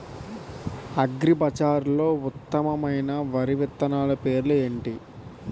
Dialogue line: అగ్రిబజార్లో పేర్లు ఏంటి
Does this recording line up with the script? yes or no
no